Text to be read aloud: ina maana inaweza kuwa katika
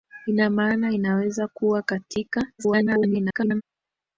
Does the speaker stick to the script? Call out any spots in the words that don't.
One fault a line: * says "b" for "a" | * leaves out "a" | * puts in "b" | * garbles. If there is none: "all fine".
* garbles